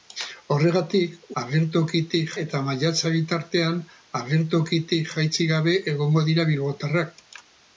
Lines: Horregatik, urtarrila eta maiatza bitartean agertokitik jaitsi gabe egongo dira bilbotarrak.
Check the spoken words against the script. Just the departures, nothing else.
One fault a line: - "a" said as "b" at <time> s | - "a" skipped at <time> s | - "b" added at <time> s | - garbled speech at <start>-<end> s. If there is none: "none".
- "urtarrila" said as "agertokitik" at 1.4 s